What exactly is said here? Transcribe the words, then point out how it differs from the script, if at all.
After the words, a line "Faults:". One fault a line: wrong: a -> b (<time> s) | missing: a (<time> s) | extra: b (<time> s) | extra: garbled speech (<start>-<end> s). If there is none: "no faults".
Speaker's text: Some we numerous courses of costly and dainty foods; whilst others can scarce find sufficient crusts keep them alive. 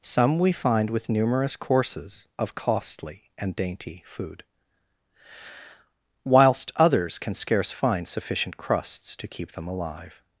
Some we find with numerous courses of costly and dainty food; whilst others can scarce find sufficient crusts to keep them alive.
Faults:
extra: find with (0.5 s)
wrong: foods -> food (4.0 s)
extra: to (9.2 s)